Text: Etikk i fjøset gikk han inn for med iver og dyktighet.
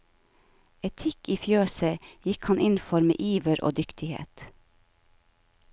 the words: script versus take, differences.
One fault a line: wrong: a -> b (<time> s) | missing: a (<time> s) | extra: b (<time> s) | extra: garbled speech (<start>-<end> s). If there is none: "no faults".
no faults